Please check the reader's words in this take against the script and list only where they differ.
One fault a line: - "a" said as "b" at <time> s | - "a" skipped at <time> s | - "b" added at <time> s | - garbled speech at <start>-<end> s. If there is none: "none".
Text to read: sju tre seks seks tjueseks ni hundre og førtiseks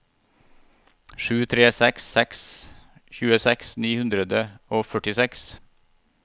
none